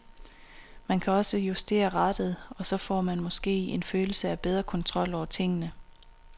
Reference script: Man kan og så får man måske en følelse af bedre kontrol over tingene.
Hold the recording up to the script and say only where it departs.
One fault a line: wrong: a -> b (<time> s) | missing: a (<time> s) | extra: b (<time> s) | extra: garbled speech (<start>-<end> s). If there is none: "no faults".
extra: også justere rattet (1.1 s)